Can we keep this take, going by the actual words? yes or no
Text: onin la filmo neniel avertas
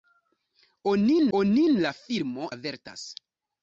no